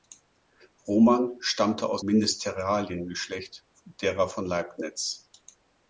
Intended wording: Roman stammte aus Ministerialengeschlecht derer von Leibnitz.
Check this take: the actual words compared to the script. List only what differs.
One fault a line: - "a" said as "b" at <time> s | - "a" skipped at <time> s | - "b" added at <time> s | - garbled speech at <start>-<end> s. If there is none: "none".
none